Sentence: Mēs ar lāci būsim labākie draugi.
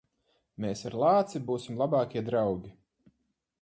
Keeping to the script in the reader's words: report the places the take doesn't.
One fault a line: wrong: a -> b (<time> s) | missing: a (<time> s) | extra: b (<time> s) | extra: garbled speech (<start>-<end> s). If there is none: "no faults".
no faults